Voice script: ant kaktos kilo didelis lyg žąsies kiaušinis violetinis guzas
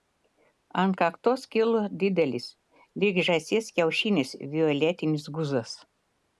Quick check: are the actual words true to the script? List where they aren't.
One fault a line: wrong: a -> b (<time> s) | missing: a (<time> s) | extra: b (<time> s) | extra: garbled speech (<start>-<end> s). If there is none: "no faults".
no faults